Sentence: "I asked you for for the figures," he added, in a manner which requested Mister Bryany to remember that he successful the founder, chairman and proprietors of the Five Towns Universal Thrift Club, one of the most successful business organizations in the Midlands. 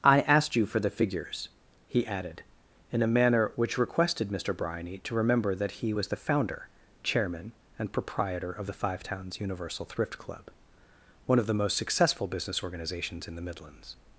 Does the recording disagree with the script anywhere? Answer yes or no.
yes